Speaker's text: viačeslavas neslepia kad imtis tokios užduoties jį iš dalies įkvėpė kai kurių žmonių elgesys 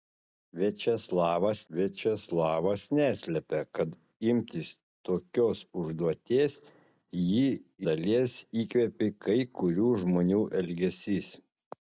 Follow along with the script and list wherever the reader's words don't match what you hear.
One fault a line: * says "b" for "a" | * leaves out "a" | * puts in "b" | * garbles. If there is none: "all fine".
* puts in "viačeslavas"
* leaves out "iš"